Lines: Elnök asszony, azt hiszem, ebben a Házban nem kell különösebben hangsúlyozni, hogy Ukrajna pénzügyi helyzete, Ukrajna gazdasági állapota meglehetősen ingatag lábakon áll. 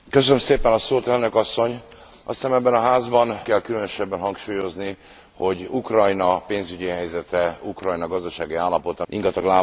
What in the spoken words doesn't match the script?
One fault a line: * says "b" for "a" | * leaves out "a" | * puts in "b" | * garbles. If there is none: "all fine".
* leaves out "nem"
* leaves out "meglehetősen"